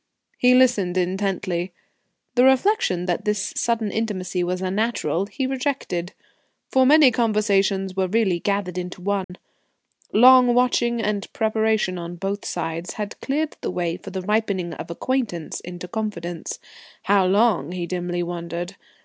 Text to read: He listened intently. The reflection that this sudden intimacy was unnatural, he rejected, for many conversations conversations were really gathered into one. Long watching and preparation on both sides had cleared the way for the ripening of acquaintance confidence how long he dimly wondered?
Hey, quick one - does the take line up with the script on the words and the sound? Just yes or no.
no